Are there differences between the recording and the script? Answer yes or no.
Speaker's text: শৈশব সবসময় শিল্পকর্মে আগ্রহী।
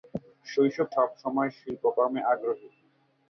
no